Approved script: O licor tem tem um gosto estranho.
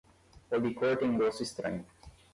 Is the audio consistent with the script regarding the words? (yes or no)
no